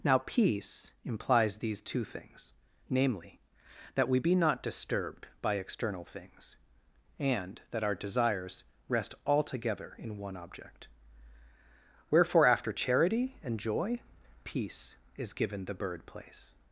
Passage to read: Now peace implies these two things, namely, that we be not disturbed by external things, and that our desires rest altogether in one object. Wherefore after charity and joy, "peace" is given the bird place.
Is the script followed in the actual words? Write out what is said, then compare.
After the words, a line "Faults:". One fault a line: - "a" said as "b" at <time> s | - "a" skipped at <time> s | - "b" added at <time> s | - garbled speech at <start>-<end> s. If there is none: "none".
Now peace implies these two things, namely, that we be not disturbed by external things, and that our desires rest altogether in one object. Wherefore after charity and joy, "peace" is given the bird place.
Faults:
none